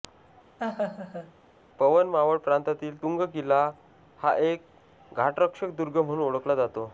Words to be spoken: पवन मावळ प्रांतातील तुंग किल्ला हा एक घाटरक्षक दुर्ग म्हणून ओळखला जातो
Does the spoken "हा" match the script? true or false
true